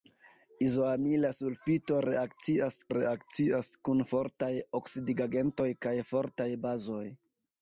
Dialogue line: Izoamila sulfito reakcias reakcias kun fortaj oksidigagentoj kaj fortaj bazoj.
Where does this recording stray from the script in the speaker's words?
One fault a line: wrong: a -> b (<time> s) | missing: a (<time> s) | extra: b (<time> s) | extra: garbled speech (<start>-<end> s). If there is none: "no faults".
no faults